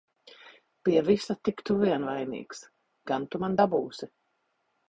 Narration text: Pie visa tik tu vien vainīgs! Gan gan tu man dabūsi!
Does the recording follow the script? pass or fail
fail